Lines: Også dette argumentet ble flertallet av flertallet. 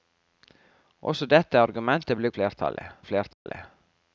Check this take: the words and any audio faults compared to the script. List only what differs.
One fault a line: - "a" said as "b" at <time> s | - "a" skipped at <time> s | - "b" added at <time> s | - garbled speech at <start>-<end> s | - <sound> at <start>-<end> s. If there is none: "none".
- dropout at 3.3-3.5 s